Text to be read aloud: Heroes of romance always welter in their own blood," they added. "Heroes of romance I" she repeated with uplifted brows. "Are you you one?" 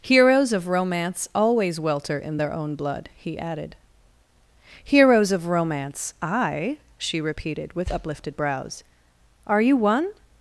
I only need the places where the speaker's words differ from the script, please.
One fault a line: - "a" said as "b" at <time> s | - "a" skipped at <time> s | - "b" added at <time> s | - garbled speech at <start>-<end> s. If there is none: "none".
- "they" said as "he" at 3.1 s
- "you" skipped at 9.7 s